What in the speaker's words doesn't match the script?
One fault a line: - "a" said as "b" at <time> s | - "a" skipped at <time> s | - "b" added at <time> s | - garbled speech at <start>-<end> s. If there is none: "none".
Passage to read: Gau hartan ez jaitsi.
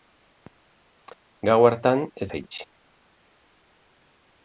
none